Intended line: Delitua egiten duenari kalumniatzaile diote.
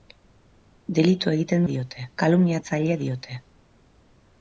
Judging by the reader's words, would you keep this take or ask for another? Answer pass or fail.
fail